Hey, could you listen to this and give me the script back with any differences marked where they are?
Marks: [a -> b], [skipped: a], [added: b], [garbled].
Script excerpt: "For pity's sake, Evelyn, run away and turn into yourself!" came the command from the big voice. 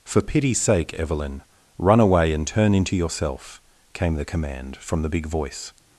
"For pity's sake, Evelyn, run away and turn into yourself!" came the command from the big voice.